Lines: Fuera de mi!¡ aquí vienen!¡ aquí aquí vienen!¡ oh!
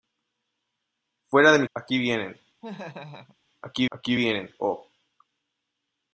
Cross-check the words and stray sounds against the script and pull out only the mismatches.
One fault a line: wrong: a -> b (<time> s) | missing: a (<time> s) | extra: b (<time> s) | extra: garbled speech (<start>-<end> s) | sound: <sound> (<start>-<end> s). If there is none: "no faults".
sound: laugh (2.6-3.4 s)